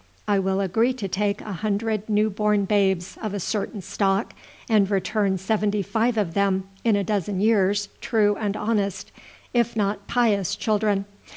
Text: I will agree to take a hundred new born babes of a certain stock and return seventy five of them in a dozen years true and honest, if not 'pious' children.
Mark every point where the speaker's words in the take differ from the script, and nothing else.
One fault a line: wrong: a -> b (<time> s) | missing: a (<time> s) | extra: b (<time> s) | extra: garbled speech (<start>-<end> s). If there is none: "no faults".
no faults